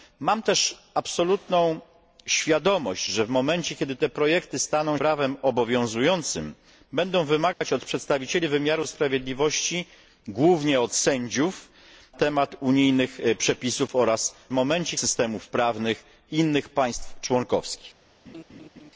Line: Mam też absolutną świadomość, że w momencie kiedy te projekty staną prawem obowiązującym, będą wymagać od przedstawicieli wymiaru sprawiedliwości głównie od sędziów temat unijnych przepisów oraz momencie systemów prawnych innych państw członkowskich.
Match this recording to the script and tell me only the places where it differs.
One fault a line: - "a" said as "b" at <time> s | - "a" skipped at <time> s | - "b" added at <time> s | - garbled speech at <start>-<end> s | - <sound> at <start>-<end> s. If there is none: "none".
- dropout at 7.5-7.6 s
- laugh at 18.3-18.9 s